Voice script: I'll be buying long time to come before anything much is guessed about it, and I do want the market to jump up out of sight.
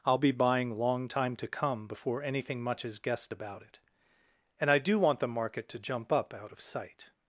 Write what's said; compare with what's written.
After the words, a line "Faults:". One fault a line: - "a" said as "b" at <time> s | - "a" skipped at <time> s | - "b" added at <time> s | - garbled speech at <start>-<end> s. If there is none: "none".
I'll be buying long time to come before anything much is guessed about it, and I do want the market to jump up out of sight.
Faults:
none